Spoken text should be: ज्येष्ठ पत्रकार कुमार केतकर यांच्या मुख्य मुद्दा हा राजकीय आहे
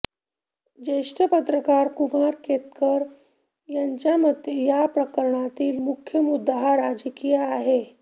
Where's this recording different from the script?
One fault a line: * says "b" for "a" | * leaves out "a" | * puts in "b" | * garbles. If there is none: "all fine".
* puts in "मते या प्रकरणातील"